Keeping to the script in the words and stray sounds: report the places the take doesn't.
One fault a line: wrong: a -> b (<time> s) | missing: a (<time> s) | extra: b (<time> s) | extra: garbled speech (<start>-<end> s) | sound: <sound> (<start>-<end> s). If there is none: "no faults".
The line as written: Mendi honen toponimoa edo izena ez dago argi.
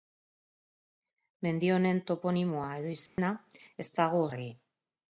sound: dropout (3.1-3.2 s)